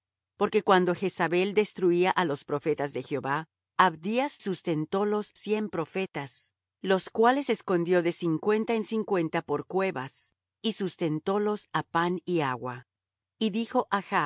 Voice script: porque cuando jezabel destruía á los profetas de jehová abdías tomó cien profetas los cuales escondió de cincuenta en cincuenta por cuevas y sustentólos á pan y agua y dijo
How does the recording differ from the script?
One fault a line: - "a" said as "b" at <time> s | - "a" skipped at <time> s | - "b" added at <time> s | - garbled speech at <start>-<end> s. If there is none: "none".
- "tomó" said as "sustentólos" at 4.4 s